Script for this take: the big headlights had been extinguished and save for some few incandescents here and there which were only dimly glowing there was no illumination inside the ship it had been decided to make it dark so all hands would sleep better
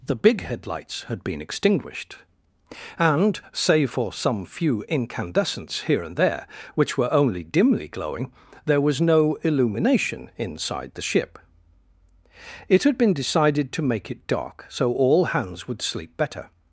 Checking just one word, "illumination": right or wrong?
right